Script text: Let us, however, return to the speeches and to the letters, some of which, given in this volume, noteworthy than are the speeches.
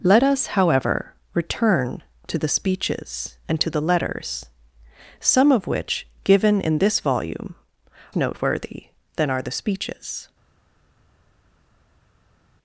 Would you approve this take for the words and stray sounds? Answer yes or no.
yes